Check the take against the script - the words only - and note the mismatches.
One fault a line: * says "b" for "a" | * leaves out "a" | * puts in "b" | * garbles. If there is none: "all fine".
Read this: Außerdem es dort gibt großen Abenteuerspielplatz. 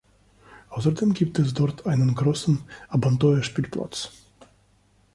* puts in "gibt"
* says "einen" for "gibt"